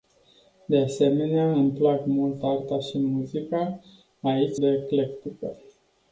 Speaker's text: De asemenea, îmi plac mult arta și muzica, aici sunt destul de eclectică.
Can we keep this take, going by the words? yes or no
no